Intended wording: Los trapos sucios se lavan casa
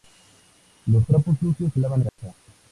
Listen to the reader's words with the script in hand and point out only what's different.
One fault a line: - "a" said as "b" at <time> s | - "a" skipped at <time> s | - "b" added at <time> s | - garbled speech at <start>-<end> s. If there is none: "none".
none